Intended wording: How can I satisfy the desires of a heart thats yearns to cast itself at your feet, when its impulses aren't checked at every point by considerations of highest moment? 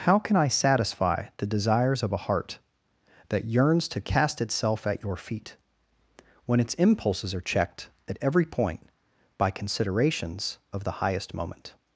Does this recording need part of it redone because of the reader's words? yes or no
yes